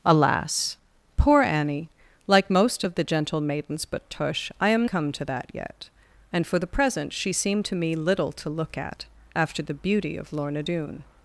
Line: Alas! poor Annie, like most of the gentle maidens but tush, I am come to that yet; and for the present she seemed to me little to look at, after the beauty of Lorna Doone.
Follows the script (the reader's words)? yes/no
yes